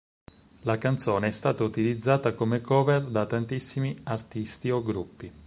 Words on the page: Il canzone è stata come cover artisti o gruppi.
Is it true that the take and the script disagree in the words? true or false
true